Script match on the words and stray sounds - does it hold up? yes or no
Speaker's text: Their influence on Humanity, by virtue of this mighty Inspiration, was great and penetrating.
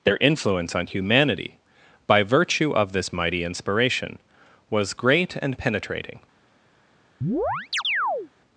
no